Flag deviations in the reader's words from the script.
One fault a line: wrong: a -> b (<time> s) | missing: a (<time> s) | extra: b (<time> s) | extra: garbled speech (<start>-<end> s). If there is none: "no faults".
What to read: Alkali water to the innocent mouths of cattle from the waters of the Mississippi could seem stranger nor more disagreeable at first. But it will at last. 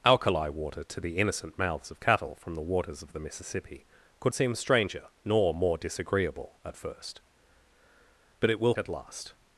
no faults